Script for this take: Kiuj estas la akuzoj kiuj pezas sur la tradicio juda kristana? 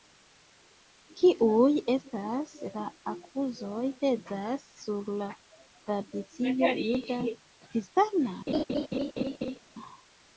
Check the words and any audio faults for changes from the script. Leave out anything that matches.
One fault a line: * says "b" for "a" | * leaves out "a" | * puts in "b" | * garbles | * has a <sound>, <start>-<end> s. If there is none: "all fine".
* leaves out "kiuj"
* has a laugh, 8.5-9.6 s